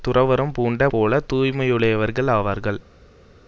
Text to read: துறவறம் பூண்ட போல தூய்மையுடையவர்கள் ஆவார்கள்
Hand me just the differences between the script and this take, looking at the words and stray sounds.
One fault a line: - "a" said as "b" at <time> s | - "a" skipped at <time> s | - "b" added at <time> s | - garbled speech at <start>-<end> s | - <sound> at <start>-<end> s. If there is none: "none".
none